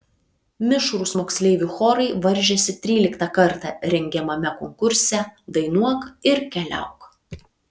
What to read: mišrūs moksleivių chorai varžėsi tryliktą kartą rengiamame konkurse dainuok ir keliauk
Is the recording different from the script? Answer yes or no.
no